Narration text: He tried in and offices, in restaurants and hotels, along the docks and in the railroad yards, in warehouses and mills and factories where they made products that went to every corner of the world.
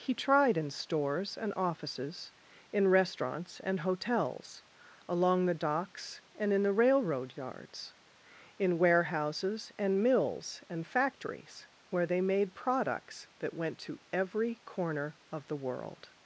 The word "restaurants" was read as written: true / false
true